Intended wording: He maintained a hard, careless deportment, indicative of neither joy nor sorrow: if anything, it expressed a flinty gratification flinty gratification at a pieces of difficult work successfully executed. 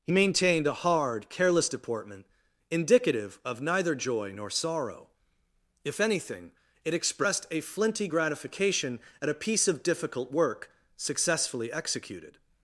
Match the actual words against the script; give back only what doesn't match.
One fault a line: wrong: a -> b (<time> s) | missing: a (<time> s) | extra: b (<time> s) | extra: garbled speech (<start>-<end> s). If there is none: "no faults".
missing: flinty gratification (9.0 s)
wrong: pieces -> piece (9.3 s)